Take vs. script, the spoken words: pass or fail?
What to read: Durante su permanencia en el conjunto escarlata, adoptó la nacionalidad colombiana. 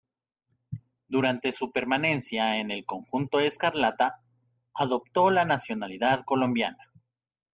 pass